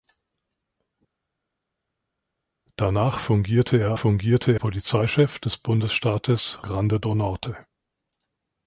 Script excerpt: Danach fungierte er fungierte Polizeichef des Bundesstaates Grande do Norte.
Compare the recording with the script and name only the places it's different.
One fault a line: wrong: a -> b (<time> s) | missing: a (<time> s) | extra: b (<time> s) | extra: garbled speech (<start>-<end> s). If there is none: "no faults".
no faults